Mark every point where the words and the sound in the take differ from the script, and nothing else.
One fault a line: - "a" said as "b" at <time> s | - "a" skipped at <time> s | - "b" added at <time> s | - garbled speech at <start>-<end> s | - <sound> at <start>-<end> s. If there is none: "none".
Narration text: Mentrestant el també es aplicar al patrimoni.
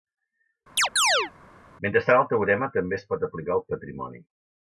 - chirp at 0.8-1.3 s
- "teorema" added at 2.3 s
- "pot" added at 3.1 s